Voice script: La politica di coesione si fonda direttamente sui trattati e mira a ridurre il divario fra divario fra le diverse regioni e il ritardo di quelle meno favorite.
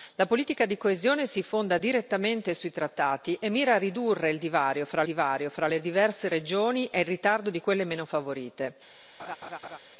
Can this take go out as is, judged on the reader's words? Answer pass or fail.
pass